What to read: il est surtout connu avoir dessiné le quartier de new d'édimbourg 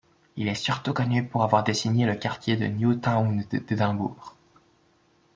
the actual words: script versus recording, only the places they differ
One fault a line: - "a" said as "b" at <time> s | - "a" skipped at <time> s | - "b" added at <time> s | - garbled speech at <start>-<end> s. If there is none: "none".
- "pour" added at 1.3 s
- "town" added at 3.0 s